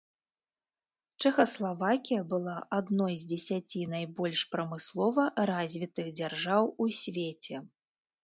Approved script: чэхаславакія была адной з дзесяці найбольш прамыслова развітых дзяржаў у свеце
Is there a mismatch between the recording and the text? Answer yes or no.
no